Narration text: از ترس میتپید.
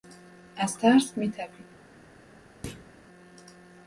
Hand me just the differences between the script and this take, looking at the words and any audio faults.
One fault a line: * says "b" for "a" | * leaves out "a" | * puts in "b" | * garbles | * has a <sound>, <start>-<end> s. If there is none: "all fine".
* has a thud, 2.6-2.9 s